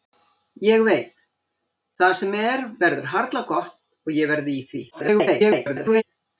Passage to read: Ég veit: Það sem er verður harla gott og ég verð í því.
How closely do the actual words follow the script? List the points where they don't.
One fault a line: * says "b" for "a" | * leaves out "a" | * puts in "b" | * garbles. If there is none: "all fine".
* garbles